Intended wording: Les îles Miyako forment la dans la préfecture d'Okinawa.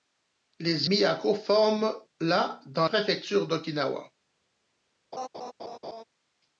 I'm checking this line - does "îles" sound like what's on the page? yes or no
no